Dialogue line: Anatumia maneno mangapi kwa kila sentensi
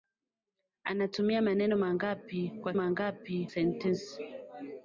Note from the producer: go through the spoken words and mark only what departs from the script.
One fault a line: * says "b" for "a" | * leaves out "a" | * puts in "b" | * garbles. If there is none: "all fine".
* says "mangapi" for "kila"